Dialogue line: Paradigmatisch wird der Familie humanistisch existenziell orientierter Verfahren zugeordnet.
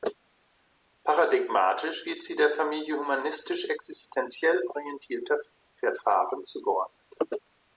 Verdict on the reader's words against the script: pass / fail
fail